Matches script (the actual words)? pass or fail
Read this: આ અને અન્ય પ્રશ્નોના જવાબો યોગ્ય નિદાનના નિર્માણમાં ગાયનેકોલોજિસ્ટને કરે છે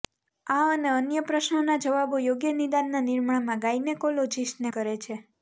pass